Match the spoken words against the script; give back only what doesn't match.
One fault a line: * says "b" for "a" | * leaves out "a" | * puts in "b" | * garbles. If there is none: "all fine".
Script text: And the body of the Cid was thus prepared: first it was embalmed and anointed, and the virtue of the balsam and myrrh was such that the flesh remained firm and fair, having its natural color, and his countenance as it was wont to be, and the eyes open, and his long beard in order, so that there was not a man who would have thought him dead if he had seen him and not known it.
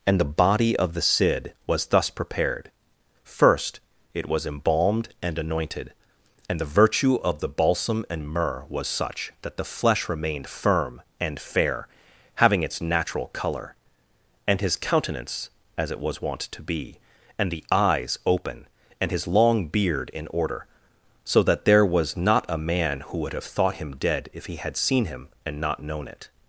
all fine